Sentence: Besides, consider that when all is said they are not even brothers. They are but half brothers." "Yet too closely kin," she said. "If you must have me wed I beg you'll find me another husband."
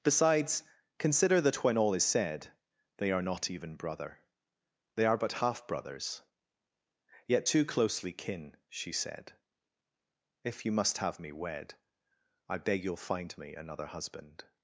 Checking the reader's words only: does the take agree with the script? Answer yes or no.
no